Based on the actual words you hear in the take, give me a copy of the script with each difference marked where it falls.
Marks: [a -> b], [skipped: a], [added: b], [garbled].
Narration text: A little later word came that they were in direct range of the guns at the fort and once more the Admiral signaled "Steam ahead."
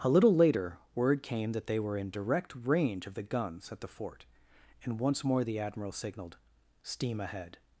A little later word came that they were in direct range of the guns at the fort and once more the Admiral signaled "Steam ahead."